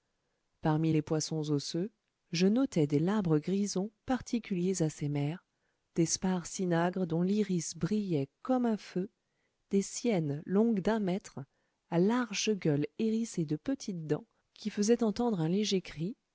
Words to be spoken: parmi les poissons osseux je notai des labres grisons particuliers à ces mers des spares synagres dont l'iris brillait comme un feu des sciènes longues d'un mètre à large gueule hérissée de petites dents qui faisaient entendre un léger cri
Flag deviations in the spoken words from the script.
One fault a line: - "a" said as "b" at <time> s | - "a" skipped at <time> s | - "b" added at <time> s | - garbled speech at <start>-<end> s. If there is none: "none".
none